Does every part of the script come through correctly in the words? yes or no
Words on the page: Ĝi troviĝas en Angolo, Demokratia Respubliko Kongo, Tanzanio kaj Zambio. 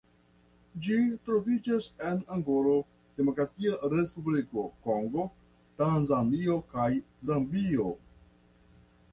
yes